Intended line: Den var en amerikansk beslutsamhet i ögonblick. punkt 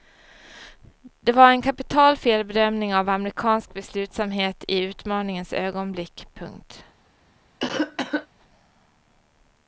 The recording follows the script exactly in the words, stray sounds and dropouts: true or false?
false